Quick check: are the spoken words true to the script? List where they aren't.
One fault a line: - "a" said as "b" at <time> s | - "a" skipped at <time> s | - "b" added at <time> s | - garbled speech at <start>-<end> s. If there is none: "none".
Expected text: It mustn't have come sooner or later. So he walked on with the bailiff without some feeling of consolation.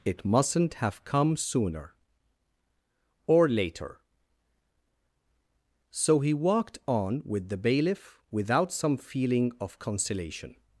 none